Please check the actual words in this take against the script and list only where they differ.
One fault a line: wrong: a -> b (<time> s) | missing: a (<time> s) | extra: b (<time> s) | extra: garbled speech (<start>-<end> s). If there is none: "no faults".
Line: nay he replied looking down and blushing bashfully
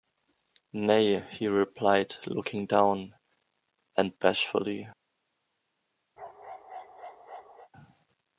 missing: blushing (4.2 s)